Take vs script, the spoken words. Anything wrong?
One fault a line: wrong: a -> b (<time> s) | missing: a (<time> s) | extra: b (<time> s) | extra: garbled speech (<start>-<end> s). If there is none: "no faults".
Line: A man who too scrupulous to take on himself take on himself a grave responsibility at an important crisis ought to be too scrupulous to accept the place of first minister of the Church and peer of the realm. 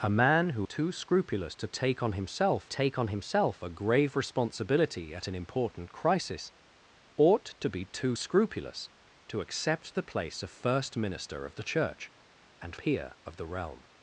no faults